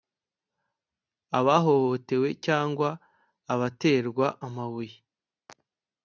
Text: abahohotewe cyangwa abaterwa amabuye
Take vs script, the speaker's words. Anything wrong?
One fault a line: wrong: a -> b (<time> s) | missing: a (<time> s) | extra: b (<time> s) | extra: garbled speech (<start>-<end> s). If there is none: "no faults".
no faults